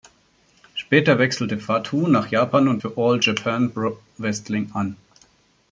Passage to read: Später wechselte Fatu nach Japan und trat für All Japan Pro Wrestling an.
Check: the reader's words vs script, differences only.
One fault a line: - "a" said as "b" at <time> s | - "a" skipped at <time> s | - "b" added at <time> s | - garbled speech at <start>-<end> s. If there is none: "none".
- "trat" skipped at 2.8 s